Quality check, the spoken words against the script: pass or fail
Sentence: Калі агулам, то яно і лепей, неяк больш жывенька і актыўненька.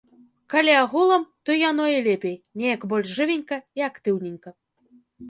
pass